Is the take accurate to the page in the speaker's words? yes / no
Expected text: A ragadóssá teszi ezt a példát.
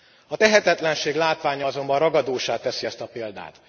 no